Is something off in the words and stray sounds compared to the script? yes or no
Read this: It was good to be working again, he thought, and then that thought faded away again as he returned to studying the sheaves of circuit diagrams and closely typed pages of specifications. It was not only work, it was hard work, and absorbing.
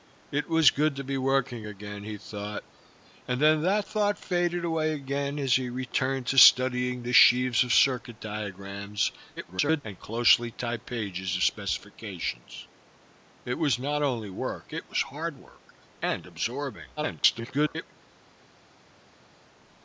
yes